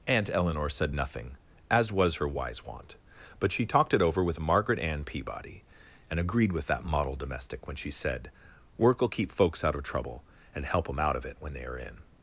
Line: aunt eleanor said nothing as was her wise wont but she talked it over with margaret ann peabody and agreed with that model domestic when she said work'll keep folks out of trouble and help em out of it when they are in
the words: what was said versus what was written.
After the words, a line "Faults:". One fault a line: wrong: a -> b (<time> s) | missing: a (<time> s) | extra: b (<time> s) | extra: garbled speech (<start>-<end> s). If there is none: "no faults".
aunt eleanor said nothing as was her wise wont but she talked it over with margaret ann peabody and agreed with that model domestic when she said work'll keep folks out of trouble and help em out of it when they are in
Faults:
no faults